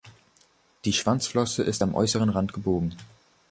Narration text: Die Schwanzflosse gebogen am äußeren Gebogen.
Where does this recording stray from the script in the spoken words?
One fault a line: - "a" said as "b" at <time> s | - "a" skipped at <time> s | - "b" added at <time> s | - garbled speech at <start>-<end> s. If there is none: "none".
- "gebogen" said as "ist" at 1.6 s
- "Rand" added at 2.3 s